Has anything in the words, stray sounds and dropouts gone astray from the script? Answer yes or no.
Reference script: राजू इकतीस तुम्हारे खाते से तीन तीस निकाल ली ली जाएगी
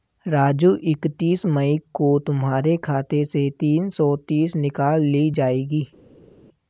yes